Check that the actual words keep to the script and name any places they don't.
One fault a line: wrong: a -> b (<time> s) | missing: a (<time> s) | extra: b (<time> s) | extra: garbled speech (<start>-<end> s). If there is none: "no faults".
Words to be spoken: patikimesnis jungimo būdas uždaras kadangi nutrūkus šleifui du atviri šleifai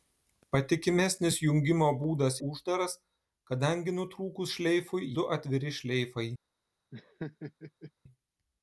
no faults